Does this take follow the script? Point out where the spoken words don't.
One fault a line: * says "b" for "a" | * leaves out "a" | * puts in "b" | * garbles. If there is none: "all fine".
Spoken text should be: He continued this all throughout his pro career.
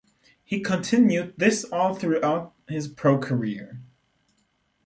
all fine